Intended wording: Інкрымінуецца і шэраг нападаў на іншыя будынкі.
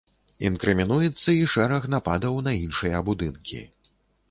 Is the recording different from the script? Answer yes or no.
no